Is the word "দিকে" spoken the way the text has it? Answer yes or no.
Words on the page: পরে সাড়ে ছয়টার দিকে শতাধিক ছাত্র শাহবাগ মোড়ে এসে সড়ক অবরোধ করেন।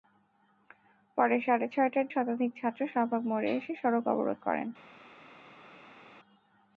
no